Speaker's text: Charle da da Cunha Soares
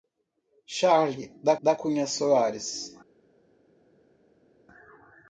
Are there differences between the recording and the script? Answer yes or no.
no